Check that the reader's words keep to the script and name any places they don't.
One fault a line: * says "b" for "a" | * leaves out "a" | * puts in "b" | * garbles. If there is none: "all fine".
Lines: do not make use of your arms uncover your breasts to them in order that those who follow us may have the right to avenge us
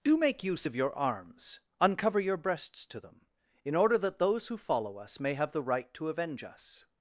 * leaves out "not"